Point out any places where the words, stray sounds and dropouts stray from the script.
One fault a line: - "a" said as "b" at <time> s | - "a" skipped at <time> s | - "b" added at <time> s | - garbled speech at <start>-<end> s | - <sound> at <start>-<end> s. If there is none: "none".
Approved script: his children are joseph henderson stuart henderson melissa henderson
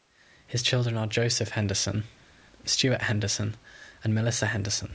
- "and" added at 4.0 s